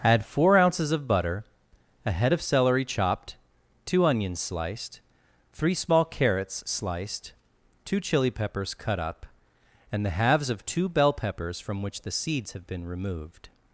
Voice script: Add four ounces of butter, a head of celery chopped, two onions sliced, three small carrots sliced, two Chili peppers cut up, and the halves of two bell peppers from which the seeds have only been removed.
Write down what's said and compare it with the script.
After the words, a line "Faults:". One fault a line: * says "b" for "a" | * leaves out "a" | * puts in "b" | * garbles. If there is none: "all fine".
Add four ounces of butter, a head of celery chopped, two onions sliced, three small carrots sliced, two Chili peppers cut up, and the halves of two bell peppers from which the seeds have been removed.
Faults:
* leaves out "only"